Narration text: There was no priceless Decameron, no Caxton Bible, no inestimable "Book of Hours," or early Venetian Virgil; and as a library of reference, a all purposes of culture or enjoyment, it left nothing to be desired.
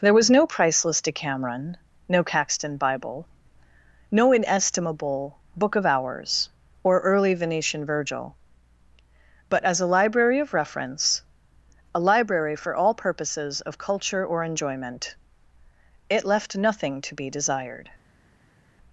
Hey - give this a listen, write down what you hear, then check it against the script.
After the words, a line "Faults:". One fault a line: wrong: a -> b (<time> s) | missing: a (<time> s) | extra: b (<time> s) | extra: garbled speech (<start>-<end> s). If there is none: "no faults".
There was no priceless Decameron, no Caxton Bible, no inestimable "Book of Hours," or early Venetian Virgil; but as a library of reference, a library for all purposes of culture or enjoyment, it left nothing to be desired.
Faults:
wrong: and -> but (9.5 s)
extra: library for (12.0 s)